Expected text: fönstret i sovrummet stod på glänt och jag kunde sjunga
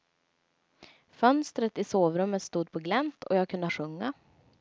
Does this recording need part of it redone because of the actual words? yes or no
no